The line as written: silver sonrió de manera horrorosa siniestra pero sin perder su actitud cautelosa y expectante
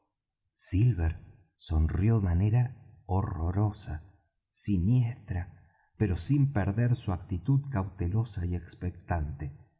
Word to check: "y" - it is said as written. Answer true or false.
true